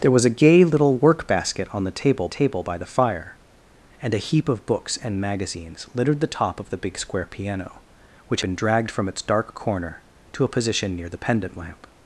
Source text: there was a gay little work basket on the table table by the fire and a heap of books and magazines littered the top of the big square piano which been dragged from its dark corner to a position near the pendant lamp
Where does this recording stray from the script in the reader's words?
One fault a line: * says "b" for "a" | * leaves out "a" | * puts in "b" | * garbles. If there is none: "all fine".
all fine